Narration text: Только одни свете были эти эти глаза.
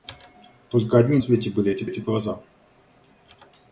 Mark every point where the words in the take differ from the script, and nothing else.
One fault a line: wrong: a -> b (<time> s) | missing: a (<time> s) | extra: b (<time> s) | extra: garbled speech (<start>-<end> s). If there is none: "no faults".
no faults